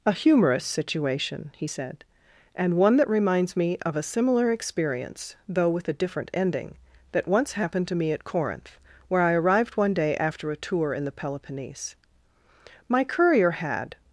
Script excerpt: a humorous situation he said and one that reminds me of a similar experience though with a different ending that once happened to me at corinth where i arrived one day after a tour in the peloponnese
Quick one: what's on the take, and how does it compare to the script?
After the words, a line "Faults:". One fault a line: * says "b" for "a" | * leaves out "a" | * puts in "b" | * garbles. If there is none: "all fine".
a humorous situation he said and one that reminds me of a similar experience though with a different ending that once happened to me at corinth where i arrived one day after a tour in the peloponnese my courier had
Faults:
* puts in "my courier had"